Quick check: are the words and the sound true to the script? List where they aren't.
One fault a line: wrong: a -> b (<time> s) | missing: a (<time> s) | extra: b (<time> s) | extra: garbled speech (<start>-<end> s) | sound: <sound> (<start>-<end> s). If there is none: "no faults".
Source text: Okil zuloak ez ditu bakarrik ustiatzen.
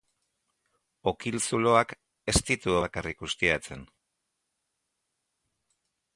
no faults